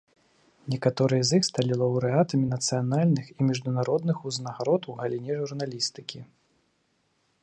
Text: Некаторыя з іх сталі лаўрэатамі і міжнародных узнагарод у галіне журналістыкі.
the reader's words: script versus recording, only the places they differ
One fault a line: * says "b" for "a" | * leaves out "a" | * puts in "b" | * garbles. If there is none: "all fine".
* puts in "нацыянальных"